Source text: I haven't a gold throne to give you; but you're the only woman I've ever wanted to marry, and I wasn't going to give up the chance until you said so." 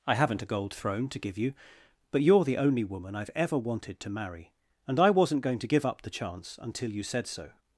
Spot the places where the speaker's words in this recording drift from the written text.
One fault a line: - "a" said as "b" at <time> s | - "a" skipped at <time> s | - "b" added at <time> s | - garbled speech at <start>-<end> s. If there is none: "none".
none